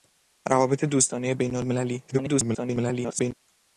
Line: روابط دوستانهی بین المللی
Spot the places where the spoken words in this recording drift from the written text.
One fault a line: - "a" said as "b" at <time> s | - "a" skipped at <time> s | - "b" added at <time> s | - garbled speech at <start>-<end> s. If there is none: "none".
- garbled speech at 2.1-3.3 s